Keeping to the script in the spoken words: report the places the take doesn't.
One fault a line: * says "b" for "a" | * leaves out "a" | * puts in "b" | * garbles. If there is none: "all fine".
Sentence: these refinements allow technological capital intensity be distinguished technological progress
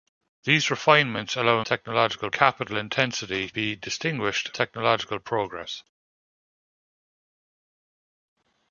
all fine